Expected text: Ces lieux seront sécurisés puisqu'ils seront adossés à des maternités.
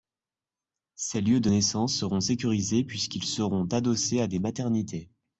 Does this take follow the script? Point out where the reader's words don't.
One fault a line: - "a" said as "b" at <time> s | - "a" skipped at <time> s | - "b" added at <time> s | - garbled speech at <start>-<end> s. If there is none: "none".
- "de naissance" added at 1.4 s